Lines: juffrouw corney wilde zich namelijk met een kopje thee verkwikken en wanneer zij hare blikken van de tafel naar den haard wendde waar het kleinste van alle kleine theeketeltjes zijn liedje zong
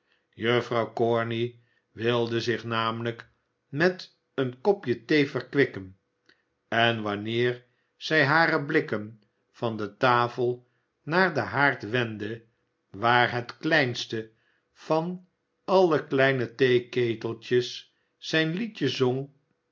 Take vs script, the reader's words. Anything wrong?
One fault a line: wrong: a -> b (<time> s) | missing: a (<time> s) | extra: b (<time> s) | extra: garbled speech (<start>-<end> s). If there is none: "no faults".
no faults